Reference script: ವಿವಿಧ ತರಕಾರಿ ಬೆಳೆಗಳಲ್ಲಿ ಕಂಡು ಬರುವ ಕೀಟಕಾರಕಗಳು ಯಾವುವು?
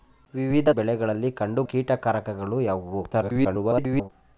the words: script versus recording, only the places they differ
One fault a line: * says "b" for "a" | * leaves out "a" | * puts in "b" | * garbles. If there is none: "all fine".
* leaves out "ತರಕಾರಿ"
* leaves out "ಬರುವ"
* garbles